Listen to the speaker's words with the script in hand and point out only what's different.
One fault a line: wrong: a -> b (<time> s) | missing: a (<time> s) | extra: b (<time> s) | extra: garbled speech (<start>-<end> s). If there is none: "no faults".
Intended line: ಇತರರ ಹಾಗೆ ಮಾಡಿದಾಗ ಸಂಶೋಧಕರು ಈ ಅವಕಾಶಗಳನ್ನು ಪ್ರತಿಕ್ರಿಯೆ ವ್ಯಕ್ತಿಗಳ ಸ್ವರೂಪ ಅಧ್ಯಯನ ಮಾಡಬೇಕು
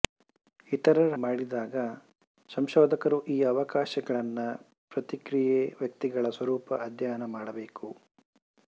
missing: ಹಾಗೆ (1.1 s)